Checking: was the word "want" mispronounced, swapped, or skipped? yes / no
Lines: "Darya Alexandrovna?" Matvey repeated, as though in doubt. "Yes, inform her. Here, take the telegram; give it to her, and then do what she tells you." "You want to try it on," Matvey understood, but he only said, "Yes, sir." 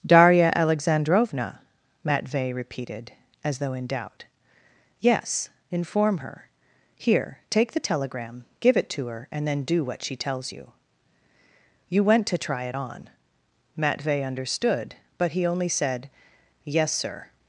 yes